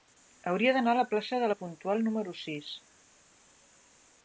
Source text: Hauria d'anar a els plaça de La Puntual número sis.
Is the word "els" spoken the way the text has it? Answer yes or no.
no